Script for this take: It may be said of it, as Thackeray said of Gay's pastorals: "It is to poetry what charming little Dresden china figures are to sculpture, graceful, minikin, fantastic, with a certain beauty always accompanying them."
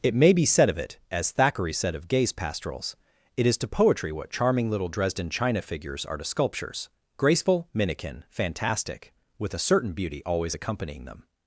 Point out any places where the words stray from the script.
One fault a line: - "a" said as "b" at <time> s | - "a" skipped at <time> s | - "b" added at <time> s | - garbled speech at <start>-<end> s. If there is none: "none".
- "sculpture" said as "sculptures" at 6.2 s